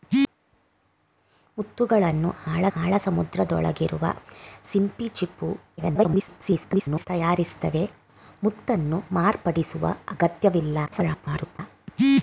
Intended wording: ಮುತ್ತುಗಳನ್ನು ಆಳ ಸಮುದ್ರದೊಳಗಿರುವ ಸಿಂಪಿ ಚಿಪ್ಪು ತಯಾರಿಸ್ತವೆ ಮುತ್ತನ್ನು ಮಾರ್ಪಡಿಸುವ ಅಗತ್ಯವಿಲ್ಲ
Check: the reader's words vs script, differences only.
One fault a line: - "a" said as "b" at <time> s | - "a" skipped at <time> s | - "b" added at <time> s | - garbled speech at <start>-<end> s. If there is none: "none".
- "ಆಳ" added at 2.8 s
- garbled speech at 5.8-7.1 s
- garbled speech at 10.9-11.6 s